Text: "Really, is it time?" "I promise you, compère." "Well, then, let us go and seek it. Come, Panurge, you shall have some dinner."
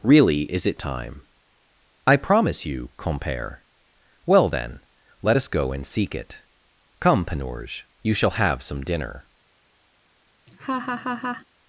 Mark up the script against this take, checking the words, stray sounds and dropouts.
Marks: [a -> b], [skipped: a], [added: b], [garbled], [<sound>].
"Really, is it time?" "I promise you, compère." "Well, then, let us go and seek it. Come, Panurge, you shall have some dinner." [laugh]